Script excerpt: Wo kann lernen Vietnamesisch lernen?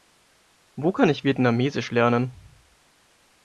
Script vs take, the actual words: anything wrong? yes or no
yes